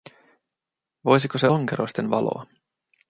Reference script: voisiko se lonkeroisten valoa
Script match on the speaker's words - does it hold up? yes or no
yes